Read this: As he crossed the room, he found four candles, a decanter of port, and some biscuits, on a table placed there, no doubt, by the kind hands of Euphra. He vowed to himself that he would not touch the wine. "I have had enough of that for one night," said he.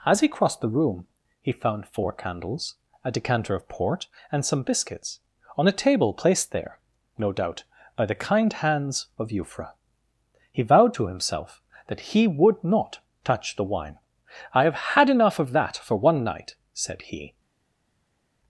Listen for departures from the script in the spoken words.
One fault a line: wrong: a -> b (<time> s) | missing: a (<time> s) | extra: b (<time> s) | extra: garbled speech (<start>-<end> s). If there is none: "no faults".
no faults